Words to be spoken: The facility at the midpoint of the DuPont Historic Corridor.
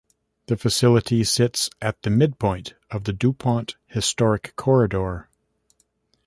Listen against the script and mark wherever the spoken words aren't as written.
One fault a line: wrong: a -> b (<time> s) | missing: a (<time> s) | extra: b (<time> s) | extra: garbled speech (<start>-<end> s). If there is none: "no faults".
extra: sits (1.2 s)